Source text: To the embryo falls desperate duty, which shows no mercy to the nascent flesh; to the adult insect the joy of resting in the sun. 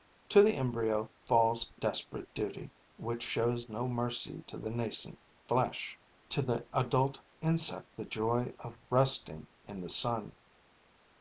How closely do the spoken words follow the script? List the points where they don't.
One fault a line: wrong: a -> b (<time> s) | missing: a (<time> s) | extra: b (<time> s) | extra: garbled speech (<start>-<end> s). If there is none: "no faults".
no faults